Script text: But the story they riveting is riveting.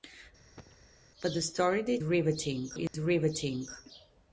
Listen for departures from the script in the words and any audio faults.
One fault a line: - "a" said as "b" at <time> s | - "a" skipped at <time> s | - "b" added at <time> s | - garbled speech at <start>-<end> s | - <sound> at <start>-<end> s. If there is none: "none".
- cough at 0.6-0.9 s
- dropout at 2.9-2.9 s